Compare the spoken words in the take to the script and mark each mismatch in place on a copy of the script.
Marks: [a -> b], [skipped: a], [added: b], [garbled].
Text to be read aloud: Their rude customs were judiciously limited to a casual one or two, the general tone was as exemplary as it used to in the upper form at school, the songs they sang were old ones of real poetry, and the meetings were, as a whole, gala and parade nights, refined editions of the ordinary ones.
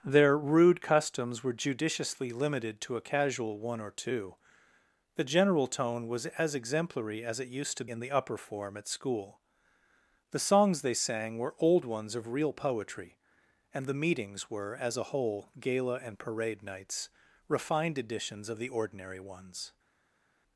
Their rude customs were judiciously limited to a casual one or two, the general tone was as exemplary as it used to in the upper form at school, the songs they sang were old ones of real poetry, and the meetings were, as a whole, gala and parade nights, refined editions of the ordinary ones.